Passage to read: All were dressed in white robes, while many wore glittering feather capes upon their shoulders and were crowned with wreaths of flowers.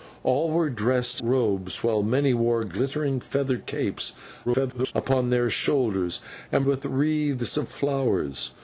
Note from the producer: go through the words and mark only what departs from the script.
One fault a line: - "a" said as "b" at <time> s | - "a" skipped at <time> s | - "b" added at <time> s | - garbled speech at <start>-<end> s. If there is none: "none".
- "in white" skipped at 1.2 s
- garbled speech at 4.5-4.9 s
- "were crowned" skipped at 6.7 s